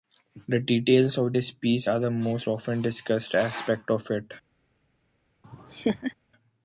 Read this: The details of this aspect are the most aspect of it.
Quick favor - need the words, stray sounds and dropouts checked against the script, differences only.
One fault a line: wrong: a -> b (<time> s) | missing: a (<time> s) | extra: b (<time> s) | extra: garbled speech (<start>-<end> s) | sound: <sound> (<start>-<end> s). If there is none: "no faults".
wrong: aspect -> piece (1.5 s)
extra: often discussed (2.5 s)
sound: laugh (5.4-6.1 s)